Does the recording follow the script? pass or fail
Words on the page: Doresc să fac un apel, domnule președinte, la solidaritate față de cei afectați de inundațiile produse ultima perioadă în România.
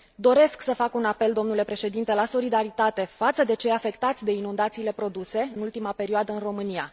pass